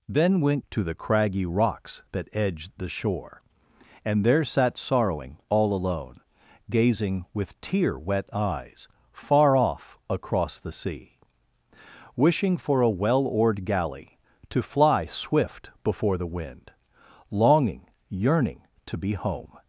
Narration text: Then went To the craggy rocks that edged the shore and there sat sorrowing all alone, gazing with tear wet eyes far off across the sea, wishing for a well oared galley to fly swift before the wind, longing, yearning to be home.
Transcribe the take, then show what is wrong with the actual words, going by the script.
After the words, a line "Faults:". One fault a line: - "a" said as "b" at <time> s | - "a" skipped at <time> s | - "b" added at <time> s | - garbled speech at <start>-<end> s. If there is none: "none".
Then went To the craggy rocks that edged the shore and there sat sorrowing all alone, gazing with tear wet eyes far off across the sea, wishing for a well oared galley to fly swift before the wind, longing, yearning to be home.
Faults:
none